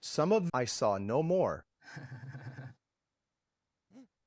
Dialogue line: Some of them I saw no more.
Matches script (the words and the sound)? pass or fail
fail